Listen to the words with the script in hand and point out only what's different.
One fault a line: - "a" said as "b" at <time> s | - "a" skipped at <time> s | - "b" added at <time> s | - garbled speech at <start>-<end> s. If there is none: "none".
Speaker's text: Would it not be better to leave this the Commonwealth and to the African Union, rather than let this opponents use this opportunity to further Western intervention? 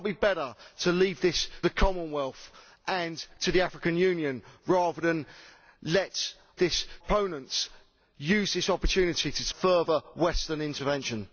none